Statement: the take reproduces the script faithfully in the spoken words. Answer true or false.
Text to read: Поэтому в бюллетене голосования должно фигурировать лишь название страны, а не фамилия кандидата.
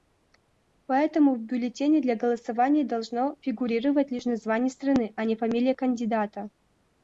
false